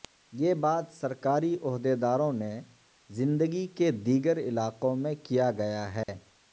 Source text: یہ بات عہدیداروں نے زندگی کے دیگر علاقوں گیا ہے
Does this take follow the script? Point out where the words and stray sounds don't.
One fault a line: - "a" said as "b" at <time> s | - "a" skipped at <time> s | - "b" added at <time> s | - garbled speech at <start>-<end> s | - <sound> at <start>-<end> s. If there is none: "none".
- "سرکاری" added at 0.9 s
- "میں کیا" added at 5.0 s
- dropout at 6.0-6.1 s